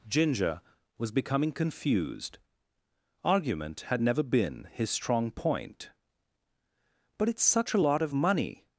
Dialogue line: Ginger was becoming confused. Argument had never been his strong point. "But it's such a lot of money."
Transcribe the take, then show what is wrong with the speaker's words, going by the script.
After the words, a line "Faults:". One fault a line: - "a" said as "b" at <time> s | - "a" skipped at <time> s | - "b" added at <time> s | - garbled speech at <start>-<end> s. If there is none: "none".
Ginger was becoming confused. Argument had never been his strong point. "But it's such a lot of money."
Faults:
none